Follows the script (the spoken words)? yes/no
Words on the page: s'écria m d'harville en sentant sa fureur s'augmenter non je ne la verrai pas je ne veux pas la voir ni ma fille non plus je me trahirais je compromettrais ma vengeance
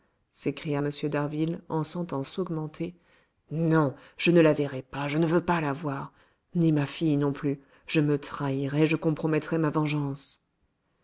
no